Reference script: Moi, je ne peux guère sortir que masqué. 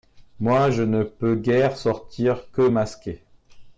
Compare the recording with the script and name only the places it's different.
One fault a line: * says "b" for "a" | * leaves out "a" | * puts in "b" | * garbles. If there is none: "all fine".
all fine